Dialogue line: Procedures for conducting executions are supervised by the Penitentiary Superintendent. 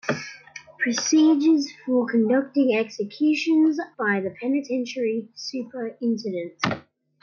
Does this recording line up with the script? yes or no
no